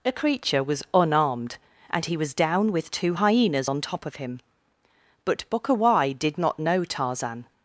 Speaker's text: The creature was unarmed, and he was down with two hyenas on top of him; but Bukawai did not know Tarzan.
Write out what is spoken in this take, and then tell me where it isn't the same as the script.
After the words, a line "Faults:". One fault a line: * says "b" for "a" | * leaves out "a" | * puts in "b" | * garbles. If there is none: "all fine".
A creature was unarmed, and he was down with two hyenas on top of him; but Bukawai did not know Tarzan.
Faults:
* says "A" for "The"